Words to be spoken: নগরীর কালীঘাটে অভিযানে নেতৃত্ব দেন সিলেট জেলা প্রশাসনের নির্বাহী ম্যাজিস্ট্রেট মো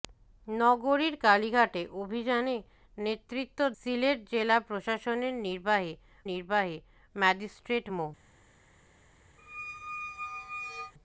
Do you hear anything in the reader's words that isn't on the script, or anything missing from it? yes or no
yes